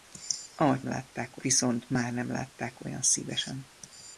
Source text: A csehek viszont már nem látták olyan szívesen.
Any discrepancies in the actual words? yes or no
yes